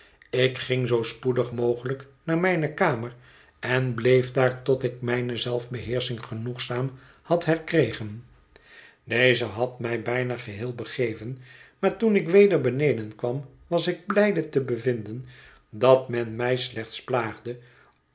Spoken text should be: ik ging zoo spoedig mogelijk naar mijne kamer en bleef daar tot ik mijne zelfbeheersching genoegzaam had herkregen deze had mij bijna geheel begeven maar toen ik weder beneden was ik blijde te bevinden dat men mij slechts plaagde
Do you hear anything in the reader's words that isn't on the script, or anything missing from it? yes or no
yes